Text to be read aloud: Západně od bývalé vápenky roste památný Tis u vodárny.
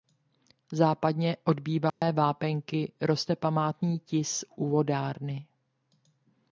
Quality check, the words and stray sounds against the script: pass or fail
fail